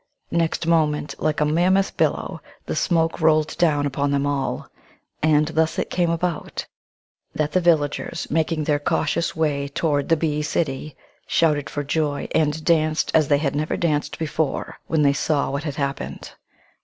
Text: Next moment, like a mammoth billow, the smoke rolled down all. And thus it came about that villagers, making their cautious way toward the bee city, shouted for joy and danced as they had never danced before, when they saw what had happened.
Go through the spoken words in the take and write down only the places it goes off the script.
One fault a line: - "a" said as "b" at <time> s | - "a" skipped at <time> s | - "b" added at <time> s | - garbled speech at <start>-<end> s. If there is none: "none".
- "upon them" added at 3.9 s
- "the" added at 7.5 s